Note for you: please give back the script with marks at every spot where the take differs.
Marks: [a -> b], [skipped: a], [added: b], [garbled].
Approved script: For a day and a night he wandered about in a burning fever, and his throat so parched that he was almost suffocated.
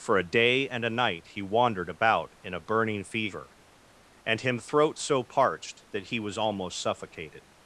For a day and a night he wandered about in a burning fever, and [his -> him] throat so parched that he was almost suffocated.